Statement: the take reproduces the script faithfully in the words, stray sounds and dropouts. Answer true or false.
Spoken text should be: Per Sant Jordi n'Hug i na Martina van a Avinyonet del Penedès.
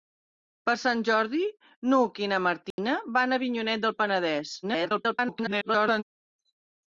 false